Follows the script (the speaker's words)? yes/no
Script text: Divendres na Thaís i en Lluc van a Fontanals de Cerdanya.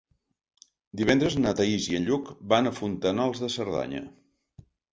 yes